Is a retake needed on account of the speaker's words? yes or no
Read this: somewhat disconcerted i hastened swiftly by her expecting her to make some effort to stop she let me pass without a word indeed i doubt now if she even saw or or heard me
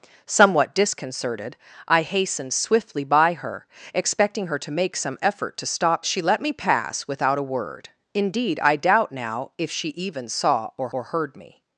no